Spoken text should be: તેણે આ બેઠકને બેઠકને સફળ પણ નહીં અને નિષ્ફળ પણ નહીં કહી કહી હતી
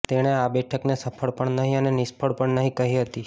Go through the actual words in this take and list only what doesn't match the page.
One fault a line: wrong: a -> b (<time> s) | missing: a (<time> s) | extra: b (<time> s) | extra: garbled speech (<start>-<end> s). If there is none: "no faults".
missing: બેઠકને (0.9 s)
missing: કહી (2.9 s)